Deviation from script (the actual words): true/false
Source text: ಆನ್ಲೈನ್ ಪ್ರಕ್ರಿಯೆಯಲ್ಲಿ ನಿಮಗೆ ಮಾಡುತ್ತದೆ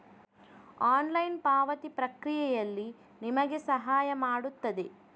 true